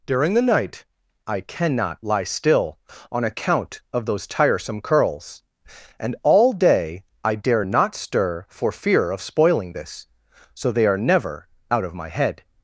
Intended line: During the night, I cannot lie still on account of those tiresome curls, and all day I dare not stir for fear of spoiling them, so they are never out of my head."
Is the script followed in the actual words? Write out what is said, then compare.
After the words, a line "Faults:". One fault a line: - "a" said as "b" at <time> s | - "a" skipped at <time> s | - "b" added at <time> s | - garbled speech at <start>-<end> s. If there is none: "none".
During the night, I cannot lie still on account of those tiresome curls, and all day I dare not stir for fear of spoiling this, so they are never out of my head."
Faults:
- "them" said as "this" at 9.7 s